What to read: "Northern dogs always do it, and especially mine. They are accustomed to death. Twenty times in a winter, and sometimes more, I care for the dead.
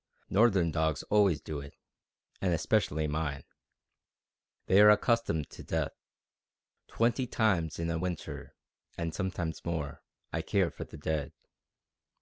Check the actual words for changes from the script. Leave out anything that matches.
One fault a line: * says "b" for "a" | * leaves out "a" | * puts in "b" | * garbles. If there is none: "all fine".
all fine